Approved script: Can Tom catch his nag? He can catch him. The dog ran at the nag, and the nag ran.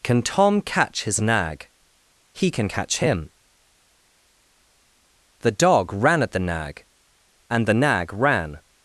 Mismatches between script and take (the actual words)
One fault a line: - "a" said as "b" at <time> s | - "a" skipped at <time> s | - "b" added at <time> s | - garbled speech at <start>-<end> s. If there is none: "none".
none